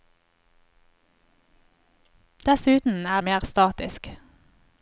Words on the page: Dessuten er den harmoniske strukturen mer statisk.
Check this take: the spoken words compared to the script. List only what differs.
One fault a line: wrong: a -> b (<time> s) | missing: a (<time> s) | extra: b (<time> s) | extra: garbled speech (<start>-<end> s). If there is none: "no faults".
missing: den harmoniske strukturen (3.2 s)